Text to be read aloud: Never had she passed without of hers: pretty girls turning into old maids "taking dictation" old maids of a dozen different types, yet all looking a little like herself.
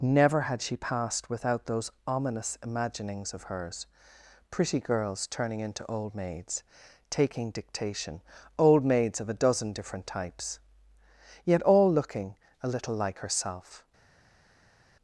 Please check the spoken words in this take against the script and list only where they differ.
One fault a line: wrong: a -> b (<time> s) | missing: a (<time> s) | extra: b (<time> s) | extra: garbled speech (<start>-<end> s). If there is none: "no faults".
extra: those ominous imaginings (1.7 s)